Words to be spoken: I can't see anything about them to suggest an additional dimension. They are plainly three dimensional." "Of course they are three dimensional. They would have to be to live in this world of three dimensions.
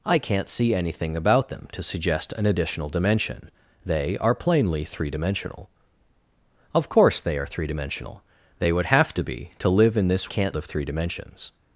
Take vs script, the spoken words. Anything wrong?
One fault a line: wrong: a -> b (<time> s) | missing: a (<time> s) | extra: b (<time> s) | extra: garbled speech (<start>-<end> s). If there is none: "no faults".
wrong: world -> can't (10.3 s)